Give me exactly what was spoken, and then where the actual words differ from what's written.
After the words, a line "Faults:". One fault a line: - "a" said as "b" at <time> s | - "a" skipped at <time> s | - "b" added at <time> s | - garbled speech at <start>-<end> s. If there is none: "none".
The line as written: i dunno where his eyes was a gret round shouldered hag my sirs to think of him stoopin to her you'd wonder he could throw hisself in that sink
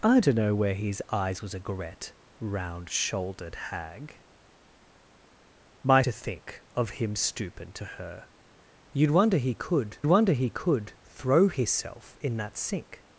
i dunno where his eyes was a gret round shouldered hag my to think of him stoopin to her you'd wonder he could wonder he could throw hisself in that sink
Faults:
- "sirs" skipped at 6.0 s
- "wonder he could" added at 10.1 s